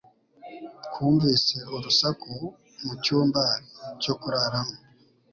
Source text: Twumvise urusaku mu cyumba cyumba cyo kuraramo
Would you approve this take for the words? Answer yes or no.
no